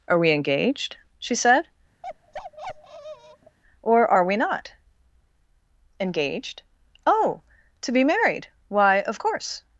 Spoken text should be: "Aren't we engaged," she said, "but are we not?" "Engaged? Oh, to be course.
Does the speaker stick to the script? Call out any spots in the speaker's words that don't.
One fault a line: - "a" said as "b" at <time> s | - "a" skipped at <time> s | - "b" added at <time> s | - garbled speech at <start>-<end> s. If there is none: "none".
- "Aren't" said as "Are" at 0.1 s
- "but" said as "or" at 3.8 s
- "married Why of" added at 8.0 s